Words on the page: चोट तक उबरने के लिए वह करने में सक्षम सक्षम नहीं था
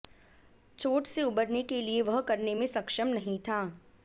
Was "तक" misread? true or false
true